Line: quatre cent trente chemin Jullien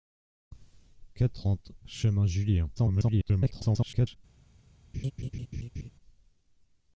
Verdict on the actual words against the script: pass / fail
fail